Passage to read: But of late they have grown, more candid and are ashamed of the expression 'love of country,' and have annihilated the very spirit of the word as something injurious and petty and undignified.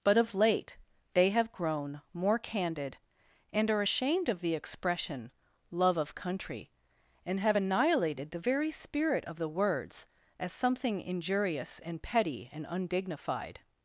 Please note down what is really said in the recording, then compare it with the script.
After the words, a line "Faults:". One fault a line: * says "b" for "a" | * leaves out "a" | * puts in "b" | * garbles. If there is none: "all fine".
But of late they have grown, more candid and are ashamed of the expression 'love of country,' and have annihilated the very spirit of the words as something injurious and petty and undignified.
Faults:
* says "words" for "word"